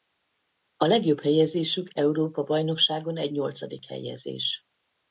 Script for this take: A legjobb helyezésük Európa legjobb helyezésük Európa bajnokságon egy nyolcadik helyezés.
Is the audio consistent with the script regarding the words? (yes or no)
no